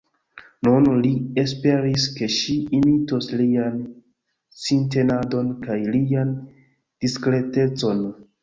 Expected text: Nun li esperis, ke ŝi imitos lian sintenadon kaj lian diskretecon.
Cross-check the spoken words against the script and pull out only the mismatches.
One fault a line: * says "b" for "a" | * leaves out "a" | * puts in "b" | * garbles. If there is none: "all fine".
all fine